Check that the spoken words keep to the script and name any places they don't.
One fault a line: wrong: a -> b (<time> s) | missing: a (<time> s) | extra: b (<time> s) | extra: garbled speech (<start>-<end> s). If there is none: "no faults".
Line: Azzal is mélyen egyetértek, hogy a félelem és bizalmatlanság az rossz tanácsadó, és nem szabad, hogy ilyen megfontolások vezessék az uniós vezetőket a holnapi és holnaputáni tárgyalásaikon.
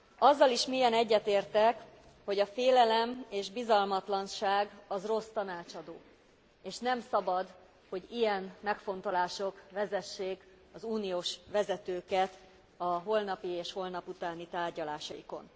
no faults